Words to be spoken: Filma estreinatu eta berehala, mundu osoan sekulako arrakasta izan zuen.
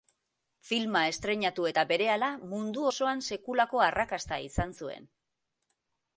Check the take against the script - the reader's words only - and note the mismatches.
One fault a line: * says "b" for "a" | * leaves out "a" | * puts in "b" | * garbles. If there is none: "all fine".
all fine